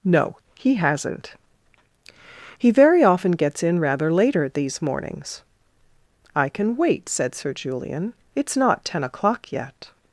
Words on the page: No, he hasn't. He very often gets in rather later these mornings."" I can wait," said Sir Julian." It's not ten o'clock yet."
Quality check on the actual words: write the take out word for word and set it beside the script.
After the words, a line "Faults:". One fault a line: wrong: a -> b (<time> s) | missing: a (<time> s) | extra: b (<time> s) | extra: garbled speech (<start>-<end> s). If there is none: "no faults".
No, he hasn't. He very often gets in rather later these mornings."" I can wait," said Sir Julian." It's not ten o'clock yet."
Faults:
no faults